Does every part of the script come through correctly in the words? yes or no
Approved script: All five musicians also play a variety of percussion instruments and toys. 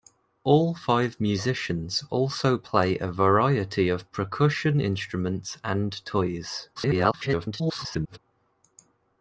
no